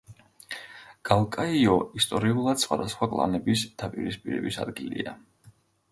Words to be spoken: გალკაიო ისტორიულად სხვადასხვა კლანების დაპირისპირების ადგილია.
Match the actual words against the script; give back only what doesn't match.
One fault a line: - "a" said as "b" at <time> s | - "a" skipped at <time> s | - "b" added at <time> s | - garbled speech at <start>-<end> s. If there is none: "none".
none